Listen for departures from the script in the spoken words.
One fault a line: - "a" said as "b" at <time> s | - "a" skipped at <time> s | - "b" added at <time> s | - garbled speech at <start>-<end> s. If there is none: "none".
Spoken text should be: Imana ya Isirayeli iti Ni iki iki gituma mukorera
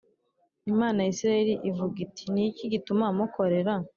- "ivuga" added at 1.7 s
- "iki" skipped at 2.6 s